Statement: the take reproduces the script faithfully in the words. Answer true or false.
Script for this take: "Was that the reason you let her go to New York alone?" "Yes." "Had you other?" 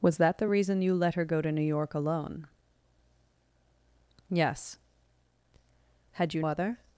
true